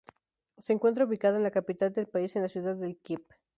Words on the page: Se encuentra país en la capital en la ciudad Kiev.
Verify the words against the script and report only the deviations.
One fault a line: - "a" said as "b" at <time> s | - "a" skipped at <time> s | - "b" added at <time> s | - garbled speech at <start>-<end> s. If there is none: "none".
- "país" said as "ubicada" at 1.1 s
- "del país" added at 1.9 s
- "de" added at 2.8 s